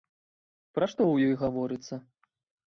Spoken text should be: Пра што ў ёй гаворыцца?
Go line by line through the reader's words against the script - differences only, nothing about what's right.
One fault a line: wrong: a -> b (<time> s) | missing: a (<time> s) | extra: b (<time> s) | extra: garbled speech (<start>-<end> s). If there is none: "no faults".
no faults